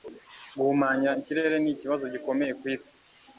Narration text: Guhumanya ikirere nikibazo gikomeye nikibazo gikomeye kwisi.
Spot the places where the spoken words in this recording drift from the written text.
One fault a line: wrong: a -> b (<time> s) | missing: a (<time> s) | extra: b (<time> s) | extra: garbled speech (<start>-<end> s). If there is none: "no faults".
missing: nikibazo gikomeye (2.5 s)